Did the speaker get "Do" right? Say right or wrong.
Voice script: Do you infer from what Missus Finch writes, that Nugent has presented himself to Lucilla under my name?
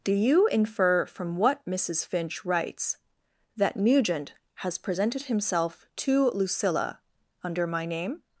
right